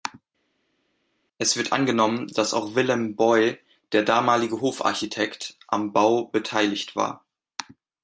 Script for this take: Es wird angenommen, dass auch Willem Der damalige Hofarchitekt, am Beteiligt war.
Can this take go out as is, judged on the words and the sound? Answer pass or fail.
fail